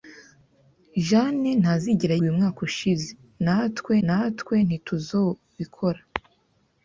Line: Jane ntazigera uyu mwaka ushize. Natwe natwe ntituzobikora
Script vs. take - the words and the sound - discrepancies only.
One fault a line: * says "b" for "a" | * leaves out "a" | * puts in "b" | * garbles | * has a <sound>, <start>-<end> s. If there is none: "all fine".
all fine